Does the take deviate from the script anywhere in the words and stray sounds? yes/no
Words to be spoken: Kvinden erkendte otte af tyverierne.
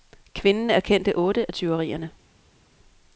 no